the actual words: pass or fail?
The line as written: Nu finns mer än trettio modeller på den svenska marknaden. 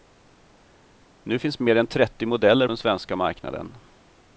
fail